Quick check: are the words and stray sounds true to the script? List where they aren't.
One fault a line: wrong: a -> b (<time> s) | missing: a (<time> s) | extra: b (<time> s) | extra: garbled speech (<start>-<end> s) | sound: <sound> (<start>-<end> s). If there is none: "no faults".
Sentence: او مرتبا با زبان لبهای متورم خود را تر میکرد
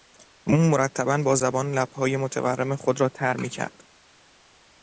no faults